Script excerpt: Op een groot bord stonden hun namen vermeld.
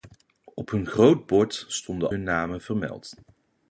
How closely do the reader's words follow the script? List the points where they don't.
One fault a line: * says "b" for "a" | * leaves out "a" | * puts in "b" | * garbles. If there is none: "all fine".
all fine